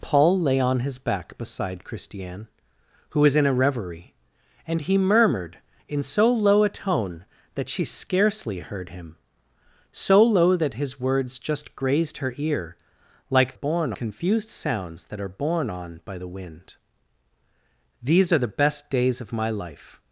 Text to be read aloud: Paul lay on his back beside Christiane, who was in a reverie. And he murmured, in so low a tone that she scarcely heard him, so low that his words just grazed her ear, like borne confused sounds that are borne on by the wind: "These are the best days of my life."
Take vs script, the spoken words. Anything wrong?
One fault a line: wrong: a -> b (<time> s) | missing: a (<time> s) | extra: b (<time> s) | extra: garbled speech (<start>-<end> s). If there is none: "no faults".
no faults